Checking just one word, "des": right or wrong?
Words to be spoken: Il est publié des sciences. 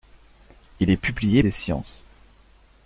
right